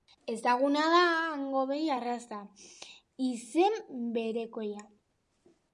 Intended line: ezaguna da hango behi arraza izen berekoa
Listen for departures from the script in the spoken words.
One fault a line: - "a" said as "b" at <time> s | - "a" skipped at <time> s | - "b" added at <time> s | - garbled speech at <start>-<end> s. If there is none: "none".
none